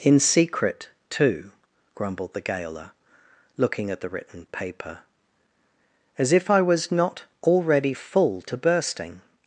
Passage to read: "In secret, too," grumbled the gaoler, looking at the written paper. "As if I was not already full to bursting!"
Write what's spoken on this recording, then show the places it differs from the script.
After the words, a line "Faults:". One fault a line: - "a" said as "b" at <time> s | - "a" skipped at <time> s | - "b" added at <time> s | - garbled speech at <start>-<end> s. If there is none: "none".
"In secret, too," grumbled the gaoler, looking at the written paper. "As if I was not already full to bursting!"
Faults:
none